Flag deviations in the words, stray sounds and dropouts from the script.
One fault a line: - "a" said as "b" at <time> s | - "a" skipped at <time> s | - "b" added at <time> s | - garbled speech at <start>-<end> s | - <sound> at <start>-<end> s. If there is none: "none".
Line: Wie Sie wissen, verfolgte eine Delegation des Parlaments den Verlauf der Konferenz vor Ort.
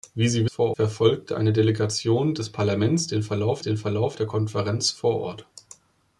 - "wissen" said as "vor" at 0.4 s
- "den Verlauf" added at 3.6 s